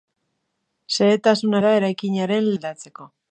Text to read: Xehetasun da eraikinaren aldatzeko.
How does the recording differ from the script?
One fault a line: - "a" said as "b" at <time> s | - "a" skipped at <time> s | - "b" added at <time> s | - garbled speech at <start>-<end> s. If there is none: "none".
none